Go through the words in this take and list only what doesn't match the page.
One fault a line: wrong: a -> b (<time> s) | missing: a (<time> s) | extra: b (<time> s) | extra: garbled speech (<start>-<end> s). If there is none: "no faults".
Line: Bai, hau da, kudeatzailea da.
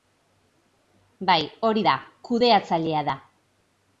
wrong: hau -> hori (1.7 s)